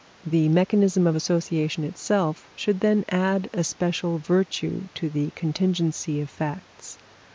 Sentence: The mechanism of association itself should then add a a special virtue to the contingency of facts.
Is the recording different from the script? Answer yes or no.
yes